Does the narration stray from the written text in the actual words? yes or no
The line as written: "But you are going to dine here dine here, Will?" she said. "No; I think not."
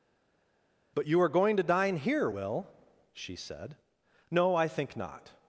yes